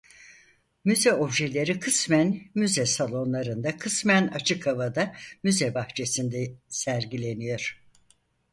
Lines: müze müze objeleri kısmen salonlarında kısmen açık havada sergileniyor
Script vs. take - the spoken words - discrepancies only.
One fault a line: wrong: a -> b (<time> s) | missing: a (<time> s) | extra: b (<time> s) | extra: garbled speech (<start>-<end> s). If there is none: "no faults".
missing: müze (1.1 s)
extra: müze (2.5 s)
extra: müze bahçesinde (5.4 s)